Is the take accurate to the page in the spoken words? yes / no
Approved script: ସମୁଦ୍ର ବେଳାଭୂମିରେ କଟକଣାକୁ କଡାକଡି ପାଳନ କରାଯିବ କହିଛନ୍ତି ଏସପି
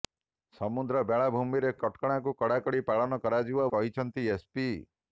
yes